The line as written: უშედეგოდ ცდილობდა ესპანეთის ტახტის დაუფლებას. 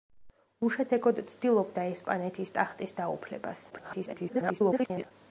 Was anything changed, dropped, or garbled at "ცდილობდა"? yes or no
no